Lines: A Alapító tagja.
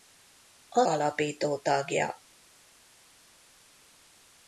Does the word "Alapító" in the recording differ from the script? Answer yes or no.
no